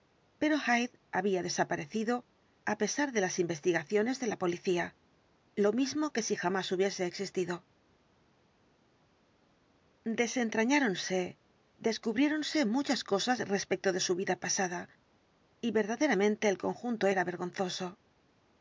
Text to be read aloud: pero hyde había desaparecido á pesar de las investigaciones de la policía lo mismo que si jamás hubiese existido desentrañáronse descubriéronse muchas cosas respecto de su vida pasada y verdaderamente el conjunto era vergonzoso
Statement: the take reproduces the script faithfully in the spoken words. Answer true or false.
true